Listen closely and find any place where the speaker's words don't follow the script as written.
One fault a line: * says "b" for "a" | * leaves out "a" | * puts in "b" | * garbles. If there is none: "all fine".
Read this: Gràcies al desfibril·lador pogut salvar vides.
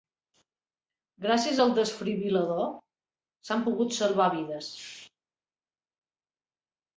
* puts in "s'han"